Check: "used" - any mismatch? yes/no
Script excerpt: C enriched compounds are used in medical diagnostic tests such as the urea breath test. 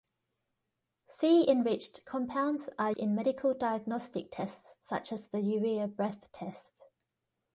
yes